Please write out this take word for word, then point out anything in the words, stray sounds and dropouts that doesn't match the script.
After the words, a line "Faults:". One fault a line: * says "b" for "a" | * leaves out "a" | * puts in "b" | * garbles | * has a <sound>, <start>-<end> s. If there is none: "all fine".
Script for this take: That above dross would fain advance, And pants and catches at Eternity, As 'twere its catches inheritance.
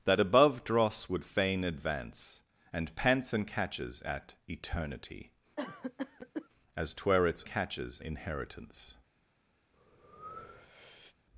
That above dross would fain advance, And pants and catches at Eternity, As 'twere its catches inheritance.
Faults:
* has a cough, 5.6-6.5 s
* has a breath, 9.7-11.2 s